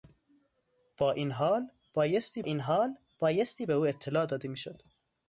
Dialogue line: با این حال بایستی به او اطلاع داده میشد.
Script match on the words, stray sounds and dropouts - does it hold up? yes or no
no